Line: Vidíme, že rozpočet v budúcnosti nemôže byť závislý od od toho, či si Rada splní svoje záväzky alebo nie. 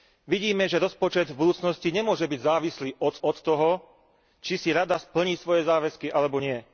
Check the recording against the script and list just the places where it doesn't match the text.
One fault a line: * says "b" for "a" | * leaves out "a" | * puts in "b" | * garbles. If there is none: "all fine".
all fine